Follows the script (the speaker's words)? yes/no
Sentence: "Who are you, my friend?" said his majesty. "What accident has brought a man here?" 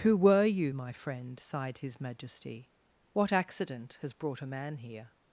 no